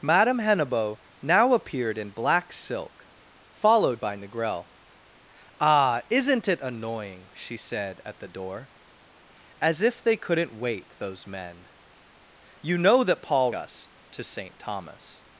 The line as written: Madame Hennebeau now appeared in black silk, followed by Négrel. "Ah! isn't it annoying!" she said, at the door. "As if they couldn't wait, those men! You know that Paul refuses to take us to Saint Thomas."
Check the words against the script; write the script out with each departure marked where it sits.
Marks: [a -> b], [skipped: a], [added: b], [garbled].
Madame Hennebeau now appeared in black silk, followed by Négrel. "Ah! isn't it annoying!" she said, at the door. "As if they couldn't wait, those men! You know that Paul [skipped: refuses to take] us to Saint Thomas."